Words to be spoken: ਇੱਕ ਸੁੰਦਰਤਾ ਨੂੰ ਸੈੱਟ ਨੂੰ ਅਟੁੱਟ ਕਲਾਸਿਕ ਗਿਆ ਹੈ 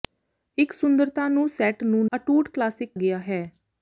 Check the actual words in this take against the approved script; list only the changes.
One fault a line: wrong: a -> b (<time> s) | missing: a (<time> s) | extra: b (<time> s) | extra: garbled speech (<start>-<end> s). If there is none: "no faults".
no faults